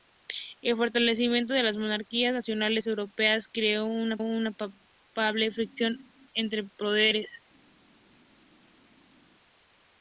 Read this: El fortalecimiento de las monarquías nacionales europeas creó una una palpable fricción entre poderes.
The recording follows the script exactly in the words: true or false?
true